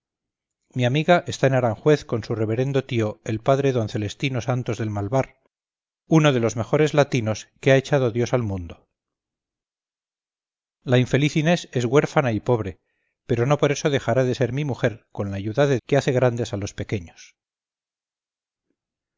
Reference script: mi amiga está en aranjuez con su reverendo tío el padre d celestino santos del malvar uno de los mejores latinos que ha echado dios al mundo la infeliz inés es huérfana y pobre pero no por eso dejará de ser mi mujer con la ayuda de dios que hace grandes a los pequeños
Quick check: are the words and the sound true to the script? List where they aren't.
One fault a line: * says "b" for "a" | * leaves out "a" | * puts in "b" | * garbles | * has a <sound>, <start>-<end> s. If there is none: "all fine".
* leaves out "dios"